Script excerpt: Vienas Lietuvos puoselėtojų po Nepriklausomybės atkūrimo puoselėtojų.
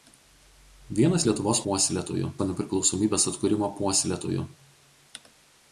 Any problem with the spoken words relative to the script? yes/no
no